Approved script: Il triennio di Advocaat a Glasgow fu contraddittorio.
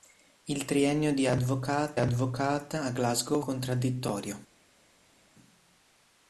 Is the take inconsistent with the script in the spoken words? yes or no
yes